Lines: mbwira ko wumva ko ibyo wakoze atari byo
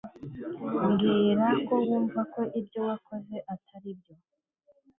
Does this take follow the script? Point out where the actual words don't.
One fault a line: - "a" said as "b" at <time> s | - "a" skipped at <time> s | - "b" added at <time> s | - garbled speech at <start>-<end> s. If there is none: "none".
none